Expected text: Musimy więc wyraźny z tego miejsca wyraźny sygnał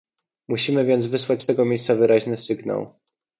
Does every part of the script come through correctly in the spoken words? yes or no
no